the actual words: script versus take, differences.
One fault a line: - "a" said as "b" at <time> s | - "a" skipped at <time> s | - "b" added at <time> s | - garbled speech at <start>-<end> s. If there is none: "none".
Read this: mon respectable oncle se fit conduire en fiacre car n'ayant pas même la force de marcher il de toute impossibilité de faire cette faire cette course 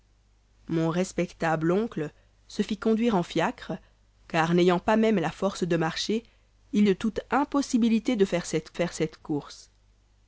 none